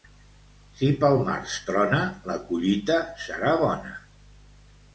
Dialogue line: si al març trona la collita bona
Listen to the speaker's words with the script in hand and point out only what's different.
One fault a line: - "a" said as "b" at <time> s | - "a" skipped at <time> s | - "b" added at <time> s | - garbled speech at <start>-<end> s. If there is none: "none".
- "al" said as "pel" at 1.0 s
- "serà" added at 3.3 s